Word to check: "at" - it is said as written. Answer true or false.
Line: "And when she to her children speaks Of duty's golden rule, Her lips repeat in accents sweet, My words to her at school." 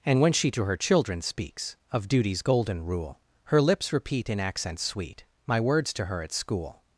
true